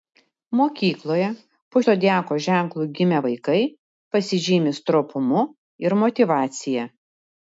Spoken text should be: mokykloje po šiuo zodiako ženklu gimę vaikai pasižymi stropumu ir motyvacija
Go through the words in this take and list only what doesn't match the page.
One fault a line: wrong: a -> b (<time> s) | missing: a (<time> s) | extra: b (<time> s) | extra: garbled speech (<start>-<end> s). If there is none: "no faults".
missing: šiuo (1.8 s)